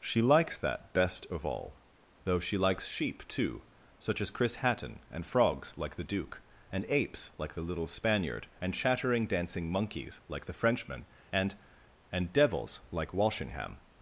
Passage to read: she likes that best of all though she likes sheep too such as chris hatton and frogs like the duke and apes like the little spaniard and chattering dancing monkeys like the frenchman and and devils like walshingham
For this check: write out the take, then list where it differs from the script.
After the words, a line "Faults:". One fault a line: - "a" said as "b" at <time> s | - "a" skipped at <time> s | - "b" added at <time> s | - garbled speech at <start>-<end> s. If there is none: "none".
she likes that best of all though she likes sheep too such as chris hatton and frogs like the duke and apes like the little spaniard and chattering dancing monkeys like the frenchman and and devils like walshingham
Faults:
none